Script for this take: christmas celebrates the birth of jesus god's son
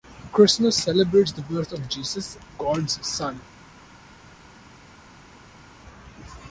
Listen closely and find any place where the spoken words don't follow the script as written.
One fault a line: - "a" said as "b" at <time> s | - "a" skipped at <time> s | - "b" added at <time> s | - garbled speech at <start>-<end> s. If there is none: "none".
none